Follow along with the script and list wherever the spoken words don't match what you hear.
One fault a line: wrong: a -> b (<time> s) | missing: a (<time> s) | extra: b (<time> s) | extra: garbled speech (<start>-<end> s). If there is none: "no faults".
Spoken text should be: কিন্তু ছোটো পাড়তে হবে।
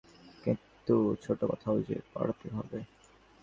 extra: কথাও যে (1.5 s)